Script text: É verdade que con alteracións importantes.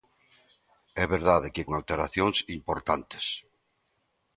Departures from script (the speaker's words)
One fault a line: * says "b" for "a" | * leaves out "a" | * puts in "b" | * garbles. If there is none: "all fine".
* leaves out "con"